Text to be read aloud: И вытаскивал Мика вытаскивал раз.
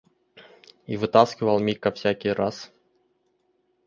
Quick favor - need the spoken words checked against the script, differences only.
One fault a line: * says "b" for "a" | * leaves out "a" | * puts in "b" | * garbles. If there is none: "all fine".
* says "всякий" for "вытаскивал"